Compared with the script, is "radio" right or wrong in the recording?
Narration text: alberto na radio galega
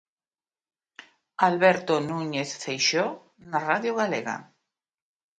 right